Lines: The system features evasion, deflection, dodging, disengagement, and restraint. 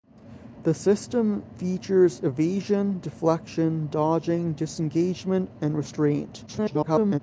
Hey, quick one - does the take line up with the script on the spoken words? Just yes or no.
no